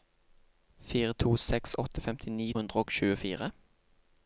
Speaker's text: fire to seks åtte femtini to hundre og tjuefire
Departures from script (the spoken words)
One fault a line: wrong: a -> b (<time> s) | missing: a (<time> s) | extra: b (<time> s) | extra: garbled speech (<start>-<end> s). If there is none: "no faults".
missing: to (2.5 s)